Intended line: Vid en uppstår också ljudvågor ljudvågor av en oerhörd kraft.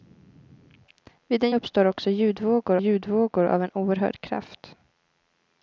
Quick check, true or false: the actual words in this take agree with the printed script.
true